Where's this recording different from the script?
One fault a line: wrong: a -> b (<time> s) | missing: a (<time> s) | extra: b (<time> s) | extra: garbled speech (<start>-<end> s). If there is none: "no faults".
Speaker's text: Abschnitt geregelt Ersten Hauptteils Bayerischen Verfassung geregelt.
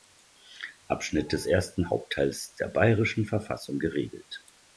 wrong: geregelt -> des (1.3 s)
extra: der (2.5 s)